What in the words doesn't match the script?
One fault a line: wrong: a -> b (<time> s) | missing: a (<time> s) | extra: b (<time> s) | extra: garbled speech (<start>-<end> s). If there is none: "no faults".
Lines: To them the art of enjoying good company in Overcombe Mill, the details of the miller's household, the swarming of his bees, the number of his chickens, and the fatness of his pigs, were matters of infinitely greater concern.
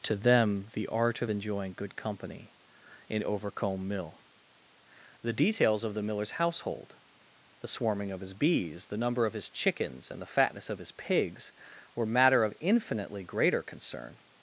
wrong: matters -> matter (12.0 s)